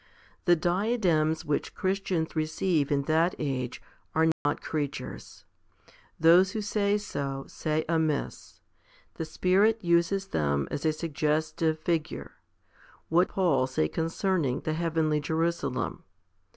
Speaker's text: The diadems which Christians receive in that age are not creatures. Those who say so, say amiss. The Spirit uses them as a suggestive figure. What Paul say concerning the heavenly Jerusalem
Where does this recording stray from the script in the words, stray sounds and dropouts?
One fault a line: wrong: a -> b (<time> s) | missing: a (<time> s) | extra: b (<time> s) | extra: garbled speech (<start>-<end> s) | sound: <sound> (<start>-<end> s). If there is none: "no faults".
sound: dropout (4.3-4.5 s)